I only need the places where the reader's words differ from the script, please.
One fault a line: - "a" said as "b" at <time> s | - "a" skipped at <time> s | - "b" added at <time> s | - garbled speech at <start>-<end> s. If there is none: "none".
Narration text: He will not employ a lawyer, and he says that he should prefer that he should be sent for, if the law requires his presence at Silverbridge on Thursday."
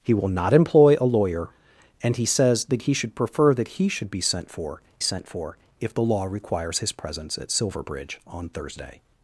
- "sent for" added at 5.0 s